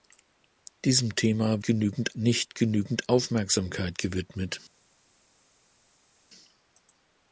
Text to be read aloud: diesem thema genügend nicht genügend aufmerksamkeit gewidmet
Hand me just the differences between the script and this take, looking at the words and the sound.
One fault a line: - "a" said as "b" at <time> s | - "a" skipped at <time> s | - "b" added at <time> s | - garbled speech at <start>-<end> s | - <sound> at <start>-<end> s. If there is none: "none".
none